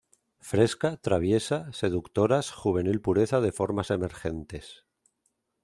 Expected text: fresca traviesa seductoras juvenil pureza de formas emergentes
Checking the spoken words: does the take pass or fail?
pass